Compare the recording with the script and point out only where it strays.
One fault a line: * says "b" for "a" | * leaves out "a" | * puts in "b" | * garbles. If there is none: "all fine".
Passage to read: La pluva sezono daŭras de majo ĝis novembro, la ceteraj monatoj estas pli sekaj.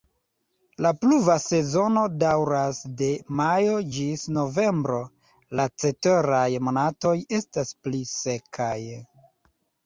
all fine